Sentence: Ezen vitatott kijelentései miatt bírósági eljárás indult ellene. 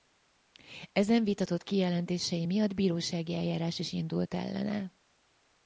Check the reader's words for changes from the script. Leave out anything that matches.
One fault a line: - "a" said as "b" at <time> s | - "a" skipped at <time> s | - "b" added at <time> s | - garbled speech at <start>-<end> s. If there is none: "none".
- "is" added at 3.8 s